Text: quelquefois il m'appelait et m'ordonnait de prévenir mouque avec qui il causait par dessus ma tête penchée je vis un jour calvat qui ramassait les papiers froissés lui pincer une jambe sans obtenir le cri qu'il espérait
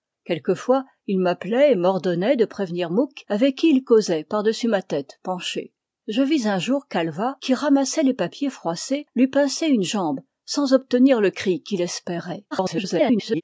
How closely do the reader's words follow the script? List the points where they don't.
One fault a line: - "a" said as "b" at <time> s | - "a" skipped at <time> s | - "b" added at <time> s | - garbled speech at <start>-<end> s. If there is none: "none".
- garbled speech at 12.5-13.4 s